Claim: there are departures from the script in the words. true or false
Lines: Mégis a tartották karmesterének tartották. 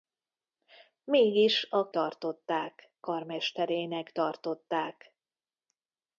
false